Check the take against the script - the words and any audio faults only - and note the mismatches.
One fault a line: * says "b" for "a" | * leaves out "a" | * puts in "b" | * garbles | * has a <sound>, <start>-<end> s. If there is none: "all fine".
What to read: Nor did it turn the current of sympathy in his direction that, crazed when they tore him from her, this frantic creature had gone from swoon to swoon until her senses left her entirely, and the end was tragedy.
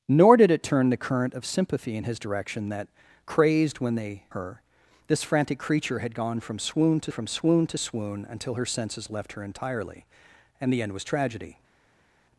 * leaves out "tore him from"
* puts in "from swoon to"